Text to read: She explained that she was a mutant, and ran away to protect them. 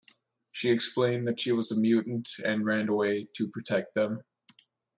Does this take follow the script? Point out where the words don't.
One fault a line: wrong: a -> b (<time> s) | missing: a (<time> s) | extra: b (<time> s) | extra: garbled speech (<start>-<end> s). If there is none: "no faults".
no faults